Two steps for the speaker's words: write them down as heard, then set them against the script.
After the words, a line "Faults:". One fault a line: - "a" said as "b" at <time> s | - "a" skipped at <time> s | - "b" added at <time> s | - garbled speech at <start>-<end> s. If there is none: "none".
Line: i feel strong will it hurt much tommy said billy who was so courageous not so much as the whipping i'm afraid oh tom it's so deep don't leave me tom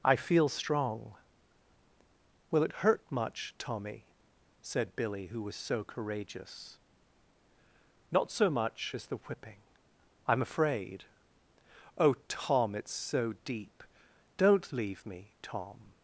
i feel strong will it hurt much tommy said billy who was so courageous not so much as the whipping i'm afraid oh tom it's so deep don't leave me tom
Faults:
none